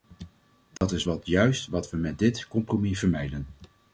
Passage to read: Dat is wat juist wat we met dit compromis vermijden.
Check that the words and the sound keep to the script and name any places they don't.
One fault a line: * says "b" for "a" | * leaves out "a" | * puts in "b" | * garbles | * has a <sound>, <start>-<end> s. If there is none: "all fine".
* has a dropout, 0.8-0.8 s